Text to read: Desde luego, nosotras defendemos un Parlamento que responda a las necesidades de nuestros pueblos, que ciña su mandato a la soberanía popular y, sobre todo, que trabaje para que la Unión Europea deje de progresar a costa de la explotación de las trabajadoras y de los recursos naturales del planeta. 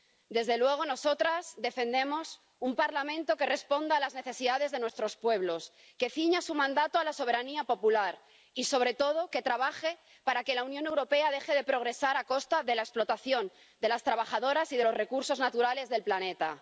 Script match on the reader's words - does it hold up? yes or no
yes